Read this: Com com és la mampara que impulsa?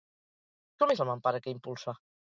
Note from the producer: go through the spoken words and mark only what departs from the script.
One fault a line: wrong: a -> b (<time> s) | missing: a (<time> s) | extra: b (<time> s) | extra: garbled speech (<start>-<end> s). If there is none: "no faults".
missing: com (0.9 s)